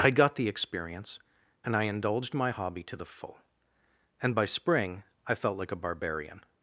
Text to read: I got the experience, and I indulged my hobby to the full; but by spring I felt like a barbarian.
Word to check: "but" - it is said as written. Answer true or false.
false